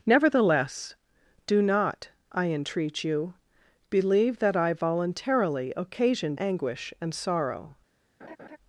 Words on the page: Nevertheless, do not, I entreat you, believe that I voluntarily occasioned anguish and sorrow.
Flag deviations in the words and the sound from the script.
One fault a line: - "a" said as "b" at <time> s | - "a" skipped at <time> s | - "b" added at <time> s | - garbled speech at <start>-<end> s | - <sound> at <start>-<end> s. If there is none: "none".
- laugh at 8.2-8.6 s